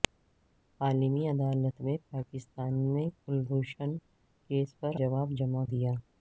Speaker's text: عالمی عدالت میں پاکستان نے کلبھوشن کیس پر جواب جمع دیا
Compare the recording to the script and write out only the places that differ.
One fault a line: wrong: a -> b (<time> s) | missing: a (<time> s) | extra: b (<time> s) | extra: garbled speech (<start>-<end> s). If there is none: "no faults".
no faults